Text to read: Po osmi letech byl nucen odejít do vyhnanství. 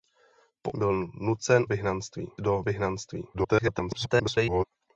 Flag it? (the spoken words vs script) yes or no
yes